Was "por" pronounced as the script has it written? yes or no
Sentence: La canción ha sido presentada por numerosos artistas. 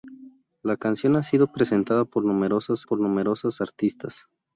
yes